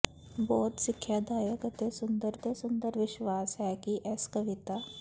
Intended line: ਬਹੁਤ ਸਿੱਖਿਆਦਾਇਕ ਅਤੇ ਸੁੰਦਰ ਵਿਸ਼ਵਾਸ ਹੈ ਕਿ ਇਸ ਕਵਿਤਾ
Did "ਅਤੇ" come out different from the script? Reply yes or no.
no